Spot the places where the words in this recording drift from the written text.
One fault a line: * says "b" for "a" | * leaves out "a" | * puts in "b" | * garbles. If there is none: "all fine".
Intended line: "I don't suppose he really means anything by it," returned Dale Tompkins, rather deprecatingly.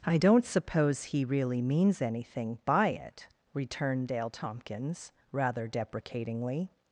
all fine